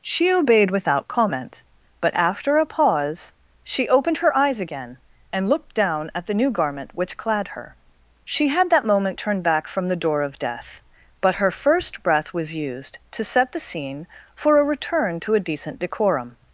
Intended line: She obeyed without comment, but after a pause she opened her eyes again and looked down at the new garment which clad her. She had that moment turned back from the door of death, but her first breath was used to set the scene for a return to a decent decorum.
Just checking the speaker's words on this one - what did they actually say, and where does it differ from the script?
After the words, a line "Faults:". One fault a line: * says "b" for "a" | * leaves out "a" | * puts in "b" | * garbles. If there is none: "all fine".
She obeyed without comment, but after a pause she opened her eyes again and looked down at the new garment which clad her. She had that moment turned back from the door of death, but her first breath was used to set the scene for a return to a decent decorum.
Faults:
all fine